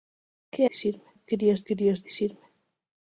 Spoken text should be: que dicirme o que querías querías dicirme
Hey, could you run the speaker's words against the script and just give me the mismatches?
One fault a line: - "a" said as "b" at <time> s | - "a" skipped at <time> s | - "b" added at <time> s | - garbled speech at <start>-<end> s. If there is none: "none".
none